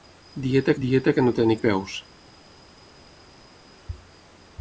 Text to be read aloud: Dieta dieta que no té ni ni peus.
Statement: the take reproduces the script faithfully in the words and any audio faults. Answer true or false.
true